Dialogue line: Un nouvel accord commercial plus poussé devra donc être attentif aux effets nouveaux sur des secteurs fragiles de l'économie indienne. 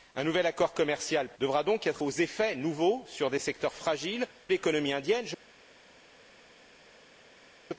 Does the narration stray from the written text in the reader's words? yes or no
yes